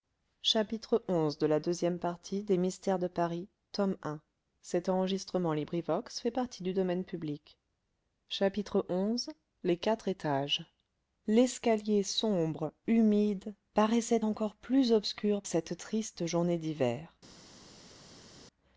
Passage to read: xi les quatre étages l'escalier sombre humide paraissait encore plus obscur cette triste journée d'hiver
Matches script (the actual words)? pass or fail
pass